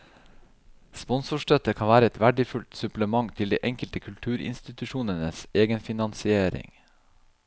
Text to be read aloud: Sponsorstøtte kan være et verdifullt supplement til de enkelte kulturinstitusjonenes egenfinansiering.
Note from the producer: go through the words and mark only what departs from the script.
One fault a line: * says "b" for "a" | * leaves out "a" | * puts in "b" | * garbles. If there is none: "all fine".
all fine